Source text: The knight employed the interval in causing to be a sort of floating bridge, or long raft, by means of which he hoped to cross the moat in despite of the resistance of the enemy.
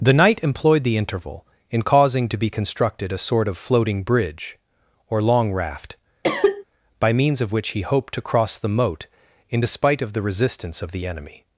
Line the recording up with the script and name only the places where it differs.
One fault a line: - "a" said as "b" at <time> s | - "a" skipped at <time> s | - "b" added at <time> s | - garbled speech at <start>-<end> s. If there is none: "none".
- "constructed" added at 2.5 s